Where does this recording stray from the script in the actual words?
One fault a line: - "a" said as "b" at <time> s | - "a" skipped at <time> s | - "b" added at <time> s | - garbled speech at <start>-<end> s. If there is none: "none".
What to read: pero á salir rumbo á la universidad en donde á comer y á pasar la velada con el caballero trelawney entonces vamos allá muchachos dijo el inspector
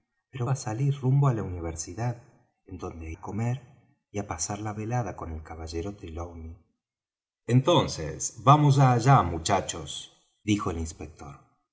none